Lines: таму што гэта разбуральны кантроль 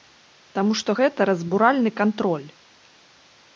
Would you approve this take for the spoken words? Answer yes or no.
yes